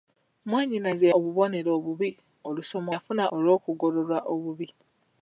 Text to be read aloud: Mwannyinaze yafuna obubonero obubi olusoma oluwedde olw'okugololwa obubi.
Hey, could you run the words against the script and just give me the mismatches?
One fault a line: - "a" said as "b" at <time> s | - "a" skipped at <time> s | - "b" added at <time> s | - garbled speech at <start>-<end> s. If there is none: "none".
- "yafuna" skipped at 1.1 s
- "oluwedde" said as "yafuna" at 2.9 s